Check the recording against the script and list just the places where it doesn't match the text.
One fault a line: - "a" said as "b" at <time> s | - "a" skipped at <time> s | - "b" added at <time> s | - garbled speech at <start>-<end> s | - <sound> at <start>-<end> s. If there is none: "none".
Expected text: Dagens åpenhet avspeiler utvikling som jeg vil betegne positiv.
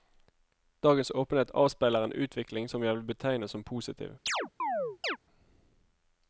- "en" added at 2.0 s
- "som" added at 3.5 s
- chirp at 4.3-5.2 s